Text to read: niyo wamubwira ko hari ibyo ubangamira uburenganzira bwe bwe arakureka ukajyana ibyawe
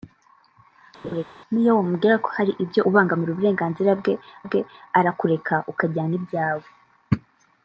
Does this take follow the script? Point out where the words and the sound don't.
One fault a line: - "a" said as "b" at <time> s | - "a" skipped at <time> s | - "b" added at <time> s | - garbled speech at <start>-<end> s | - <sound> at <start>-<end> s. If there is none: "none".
- laugh at 1.0-1.2 s